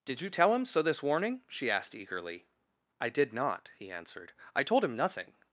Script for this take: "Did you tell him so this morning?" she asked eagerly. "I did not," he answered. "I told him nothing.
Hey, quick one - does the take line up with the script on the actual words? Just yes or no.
no